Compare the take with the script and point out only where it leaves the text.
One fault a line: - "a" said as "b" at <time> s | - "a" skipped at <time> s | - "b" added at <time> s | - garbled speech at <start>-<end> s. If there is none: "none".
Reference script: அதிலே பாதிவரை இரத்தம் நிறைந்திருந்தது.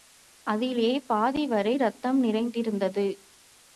none